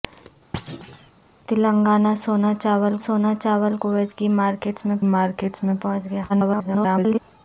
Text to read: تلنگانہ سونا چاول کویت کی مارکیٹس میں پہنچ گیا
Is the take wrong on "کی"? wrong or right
right